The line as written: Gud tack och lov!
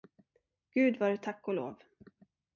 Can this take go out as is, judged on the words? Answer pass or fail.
fail